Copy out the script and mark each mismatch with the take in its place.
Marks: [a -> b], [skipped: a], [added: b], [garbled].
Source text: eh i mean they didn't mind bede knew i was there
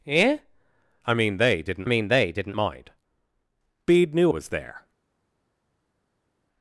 eh i mean they didn't [added: mean they didn't] mind bede knew [skipped: i] was there